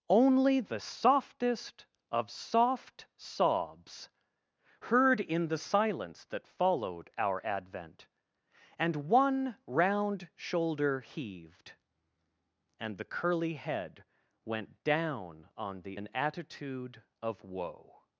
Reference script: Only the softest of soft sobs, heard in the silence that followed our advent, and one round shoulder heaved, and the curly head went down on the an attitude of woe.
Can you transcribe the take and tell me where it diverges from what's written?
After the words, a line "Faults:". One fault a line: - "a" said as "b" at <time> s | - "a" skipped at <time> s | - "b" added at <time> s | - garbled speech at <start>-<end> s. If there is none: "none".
Only the softest of soft sobs, heard in the silence that followed our advent, and one round shoulder heaved, and the curly head went down on the an attitude of woe.
Faults:
none